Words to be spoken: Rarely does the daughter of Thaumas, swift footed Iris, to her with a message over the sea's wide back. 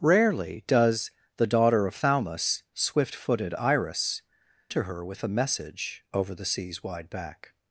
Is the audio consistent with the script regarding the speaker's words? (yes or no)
yes